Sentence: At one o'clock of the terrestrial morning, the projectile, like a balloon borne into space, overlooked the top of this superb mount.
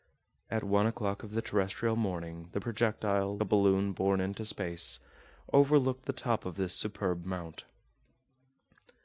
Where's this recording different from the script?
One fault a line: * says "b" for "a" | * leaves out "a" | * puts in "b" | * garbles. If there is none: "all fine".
* leaves out "like"